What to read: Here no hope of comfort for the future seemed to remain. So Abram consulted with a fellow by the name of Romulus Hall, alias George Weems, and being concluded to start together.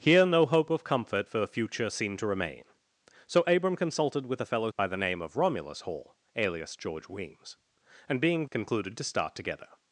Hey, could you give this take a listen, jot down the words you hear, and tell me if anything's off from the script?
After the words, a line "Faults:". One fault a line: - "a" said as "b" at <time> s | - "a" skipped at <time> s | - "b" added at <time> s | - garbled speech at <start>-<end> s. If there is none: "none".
Here no hope of comfort for the future seemed to remain. So Abram consulted with a fellow by the name of Romulus Hall, alias George Weems, and being concluded to start together.
Faults:
none